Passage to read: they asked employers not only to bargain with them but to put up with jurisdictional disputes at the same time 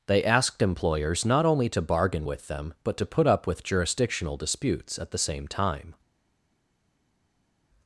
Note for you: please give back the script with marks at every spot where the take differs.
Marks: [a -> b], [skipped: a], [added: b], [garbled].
they asked employers not only to bargain with them but to put up with jurisdictional disputes at the same time